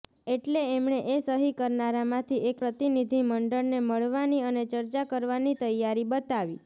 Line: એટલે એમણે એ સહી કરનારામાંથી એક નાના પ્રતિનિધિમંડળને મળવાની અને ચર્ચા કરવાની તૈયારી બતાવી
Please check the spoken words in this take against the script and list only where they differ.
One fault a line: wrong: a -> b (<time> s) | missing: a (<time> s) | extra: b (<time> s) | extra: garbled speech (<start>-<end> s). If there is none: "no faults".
missing: નાના (2.6 s)